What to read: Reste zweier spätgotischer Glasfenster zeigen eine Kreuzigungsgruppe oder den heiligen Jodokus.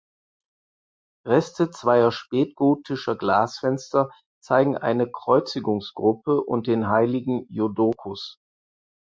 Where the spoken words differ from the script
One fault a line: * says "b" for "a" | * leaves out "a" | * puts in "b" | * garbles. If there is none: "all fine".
* says "und" for "oder"